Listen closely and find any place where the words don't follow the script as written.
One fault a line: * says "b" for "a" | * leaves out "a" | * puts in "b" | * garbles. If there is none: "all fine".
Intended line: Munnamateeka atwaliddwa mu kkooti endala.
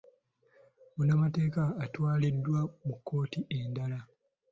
all fine